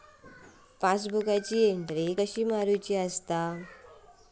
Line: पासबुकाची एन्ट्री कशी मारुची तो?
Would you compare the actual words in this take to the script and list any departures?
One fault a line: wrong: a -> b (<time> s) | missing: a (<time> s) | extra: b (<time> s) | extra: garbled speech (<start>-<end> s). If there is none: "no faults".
wrong: तो -> हा (2.9 s)